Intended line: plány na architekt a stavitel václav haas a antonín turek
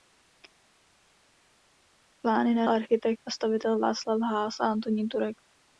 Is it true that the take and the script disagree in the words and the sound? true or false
false